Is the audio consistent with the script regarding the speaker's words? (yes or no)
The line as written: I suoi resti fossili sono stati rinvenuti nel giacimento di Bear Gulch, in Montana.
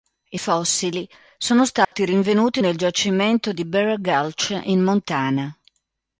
no